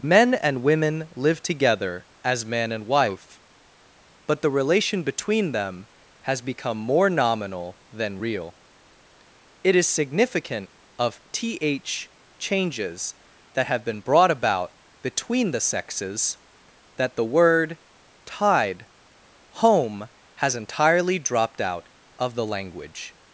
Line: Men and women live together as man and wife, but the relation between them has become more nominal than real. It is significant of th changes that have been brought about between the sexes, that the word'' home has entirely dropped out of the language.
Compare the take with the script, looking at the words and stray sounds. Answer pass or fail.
fail